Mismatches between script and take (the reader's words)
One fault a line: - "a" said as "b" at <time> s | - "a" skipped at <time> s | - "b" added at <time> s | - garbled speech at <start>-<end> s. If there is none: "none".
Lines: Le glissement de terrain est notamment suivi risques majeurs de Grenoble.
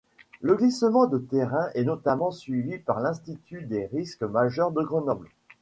- "par l'Institut des" added at 2.8 s